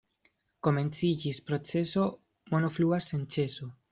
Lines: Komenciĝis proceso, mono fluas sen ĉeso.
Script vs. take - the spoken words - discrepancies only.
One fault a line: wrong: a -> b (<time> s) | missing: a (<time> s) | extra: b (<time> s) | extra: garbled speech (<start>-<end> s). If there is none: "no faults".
no faults